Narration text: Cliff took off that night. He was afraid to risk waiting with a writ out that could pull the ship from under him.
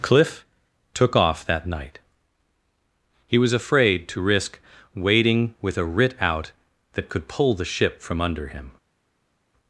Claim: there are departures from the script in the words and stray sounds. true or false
false